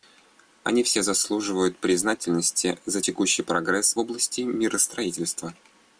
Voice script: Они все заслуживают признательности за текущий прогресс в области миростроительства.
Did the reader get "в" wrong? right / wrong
wrong